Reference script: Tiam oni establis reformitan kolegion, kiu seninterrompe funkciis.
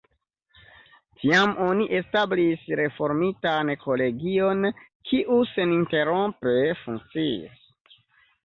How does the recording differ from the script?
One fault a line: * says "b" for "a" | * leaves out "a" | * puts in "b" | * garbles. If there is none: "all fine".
all fine